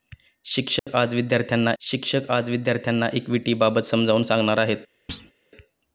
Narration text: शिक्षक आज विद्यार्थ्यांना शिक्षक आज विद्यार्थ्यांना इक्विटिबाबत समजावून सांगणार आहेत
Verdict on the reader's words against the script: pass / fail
pass